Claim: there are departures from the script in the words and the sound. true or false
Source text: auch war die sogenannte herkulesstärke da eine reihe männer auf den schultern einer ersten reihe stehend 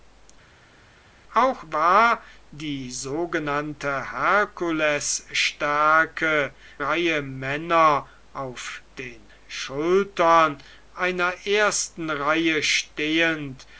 true